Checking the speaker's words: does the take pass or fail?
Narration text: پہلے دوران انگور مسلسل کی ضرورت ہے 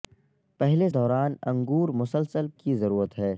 pass